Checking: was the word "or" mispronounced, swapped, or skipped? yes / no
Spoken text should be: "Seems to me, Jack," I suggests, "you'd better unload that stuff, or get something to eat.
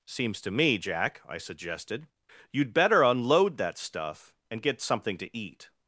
yes